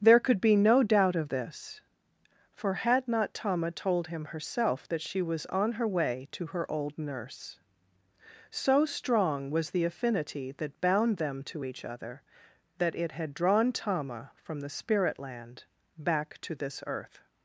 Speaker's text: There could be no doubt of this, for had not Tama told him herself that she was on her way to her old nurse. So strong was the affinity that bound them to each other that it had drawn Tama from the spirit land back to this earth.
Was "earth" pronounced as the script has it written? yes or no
yes